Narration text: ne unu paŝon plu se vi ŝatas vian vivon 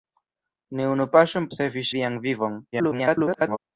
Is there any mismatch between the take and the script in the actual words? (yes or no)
yes